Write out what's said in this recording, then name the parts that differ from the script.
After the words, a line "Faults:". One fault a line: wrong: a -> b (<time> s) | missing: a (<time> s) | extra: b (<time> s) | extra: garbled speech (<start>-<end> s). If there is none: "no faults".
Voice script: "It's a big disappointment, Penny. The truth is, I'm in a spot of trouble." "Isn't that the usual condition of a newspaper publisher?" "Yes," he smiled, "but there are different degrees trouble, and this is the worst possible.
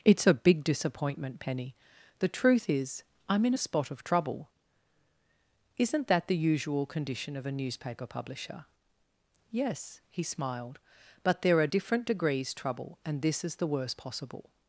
"It's a big disappointment, Penny. The truth is, I'm in a spot of trouble." "Isn't that the usual condition of a newspaper publisher?" "Yes," he smiled, "but there are different degrees trouble, and this is the worst possible.
Faults:
no faults